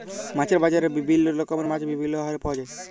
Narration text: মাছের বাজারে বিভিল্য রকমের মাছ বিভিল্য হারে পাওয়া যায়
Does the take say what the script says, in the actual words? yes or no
yes